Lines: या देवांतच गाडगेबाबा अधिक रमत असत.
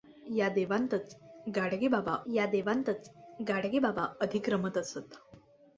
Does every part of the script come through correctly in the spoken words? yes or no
no